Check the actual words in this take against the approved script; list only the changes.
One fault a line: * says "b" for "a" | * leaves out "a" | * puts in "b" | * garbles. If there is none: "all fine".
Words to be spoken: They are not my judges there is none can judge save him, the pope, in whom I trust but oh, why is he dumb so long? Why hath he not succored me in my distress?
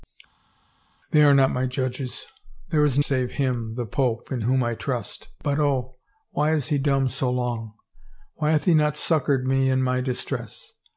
* leaves out "none can judge"